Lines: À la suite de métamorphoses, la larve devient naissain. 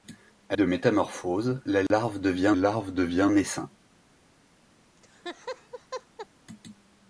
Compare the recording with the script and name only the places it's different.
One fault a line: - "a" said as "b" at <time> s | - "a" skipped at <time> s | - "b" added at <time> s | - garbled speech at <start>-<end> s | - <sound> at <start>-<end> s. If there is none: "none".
- "la suite" skipped at 0.6 s
- dropout at 1.9-1.9 s
- "larve devient" added at 2.5 s
- laugh at 5.0-6.3 s